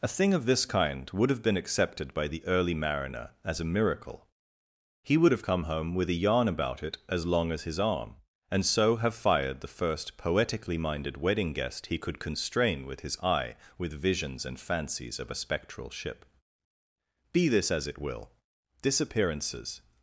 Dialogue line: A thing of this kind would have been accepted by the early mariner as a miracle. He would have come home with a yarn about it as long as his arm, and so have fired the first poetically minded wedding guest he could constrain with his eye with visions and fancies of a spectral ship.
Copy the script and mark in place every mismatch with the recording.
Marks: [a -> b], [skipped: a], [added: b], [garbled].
A thing of this kind would have been accepted by the early mariner as a miracle. He would have come home with a yarn about it as long as his arm, and so have fired the first poetically minded wedding guest he could constrain with his eye with visions and fancies of a spectral ship. [added: Be this as it will disappearances]